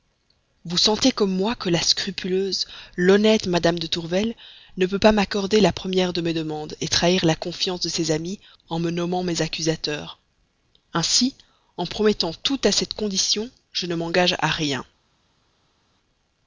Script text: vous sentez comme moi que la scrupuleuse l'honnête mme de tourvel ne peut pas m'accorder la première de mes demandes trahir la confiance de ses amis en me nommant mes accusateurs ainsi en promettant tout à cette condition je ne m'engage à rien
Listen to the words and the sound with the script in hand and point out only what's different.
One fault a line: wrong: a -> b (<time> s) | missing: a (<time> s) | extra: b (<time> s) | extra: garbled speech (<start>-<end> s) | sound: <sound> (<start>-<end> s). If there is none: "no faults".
no faults